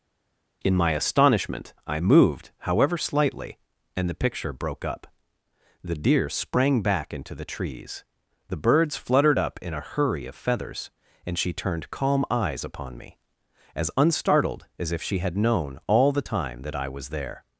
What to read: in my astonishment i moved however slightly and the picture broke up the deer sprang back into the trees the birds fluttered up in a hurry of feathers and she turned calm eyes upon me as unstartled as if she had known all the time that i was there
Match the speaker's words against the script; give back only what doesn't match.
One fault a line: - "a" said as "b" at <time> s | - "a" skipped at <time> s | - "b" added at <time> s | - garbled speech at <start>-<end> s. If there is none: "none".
none